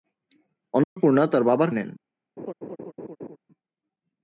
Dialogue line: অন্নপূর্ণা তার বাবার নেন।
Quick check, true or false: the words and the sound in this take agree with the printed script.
false